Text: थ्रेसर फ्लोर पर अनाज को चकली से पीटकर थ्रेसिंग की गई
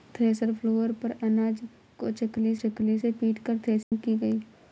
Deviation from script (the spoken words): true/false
true